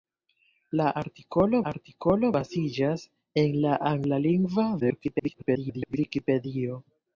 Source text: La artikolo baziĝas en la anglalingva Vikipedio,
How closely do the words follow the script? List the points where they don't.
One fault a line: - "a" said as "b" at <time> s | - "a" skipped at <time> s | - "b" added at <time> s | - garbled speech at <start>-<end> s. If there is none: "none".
- "artikolo" added at 1.7 s
- garbled speech at 4.8-6.0 s